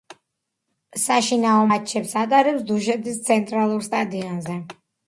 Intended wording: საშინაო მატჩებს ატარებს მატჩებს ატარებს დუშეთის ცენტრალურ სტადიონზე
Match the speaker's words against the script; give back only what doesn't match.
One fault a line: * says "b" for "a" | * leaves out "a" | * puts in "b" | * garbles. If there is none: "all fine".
* leaves out "მატჩებს ატარებს"